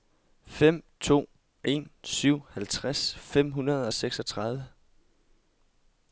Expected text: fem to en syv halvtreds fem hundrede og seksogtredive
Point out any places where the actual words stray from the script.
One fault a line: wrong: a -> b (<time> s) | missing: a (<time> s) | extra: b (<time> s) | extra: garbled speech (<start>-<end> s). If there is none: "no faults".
no faults